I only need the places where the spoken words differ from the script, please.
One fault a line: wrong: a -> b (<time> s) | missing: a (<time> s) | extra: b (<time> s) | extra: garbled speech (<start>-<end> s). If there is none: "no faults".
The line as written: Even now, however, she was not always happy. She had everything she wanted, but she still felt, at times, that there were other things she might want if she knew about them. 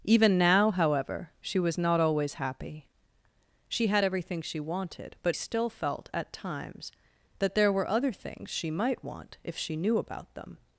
missing: she (5.4 s)